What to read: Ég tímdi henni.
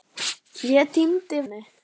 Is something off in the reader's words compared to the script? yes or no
no